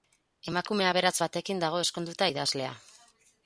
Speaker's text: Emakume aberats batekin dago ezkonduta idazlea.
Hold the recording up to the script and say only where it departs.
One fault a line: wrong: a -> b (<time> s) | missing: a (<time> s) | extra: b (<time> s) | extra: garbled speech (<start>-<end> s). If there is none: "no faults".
no faults